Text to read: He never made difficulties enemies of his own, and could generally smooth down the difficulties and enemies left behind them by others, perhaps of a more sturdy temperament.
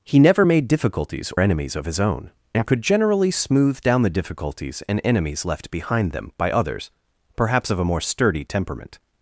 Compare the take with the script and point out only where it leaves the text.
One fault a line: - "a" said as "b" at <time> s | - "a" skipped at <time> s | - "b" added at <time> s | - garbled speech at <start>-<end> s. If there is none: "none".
none